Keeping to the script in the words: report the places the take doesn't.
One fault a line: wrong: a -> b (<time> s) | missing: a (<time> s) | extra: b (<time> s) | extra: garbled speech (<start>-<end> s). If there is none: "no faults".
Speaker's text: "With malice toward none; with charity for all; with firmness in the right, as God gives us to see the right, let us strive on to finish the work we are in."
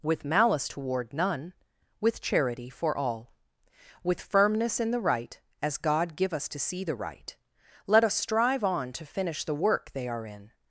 wrong: gives -> give (6.2 s)
wrong: we -> they (9.9 s)